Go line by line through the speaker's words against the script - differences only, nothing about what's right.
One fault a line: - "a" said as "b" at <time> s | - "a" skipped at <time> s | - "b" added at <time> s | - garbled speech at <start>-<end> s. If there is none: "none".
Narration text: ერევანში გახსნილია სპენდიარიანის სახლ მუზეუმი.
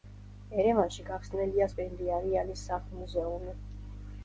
none